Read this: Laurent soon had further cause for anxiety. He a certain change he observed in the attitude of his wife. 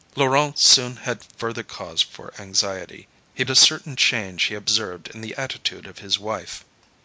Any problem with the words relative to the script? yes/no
no